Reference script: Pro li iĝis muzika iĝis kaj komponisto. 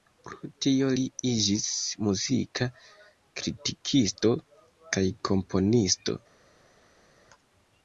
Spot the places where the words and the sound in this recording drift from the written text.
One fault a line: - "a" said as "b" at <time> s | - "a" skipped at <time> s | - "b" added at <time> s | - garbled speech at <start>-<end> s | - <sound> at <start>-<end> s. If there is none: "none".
- "tio" added at 0.7 s
- "iĝis" said as "kritikisto" at 3.4 s